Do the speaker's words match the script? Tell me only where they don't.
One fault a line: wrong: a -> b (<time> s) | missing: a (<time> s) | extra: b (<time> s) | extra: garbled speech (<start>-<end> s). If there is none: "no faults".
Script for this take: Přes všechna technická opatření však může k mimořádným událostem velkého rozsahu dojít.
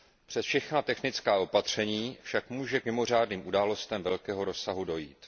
no faults